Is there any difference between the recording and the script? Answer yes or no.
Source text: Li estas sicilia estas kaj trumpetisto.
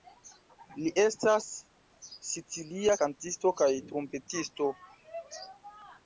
yes